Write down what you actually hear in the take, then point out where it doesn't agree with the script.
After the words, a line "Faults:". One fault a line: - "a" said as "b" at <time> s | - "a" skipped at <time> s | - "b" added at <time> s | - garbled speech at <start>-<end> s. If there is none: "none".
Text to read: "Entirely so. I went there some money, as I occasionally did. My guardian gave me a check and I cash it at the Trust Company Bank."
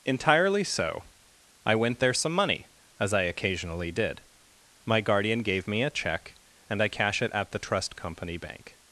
"Entirely so. I went there some money, as I occasionally did. My guardian gave me a check and I cash it at the Trust Company Bank."
Faults:
none